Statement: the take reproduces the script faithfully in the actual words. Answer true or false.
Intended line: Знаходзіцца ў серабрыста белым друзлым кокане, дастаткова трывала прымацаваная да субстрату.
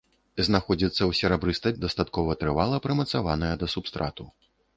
false